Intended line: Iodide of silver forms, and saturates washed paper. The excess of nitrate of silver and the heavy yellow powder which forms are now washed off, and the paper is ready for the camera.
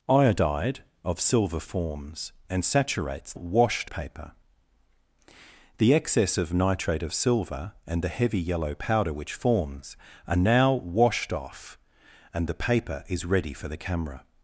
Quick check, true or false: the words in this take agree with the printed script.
true